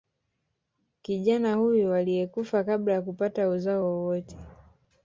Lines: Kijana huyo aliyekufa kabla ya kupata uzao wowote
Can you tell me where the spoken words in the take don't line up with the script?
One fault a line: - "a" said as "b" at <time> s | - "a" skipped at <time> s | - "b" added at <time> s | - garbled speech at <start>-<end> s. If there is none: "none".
none